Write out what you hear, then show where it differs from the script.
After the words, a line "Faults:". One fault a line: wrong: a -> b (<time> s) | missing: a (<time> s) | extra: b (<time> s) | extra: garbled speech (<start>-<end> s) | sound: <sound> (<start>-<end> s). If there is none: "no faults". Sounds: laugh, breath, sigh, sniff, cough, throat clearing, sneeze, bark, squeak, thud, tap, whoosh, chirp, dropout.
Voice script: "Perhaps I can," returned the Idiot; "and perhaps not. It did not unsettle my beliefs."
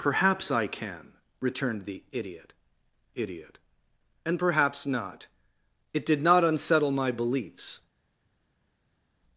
"Perhaps I can," returned the Idiot Idiot; "and perhaps not. It did not unsettle my beliefs."
Faults:
extra: Idiot (3.1 s)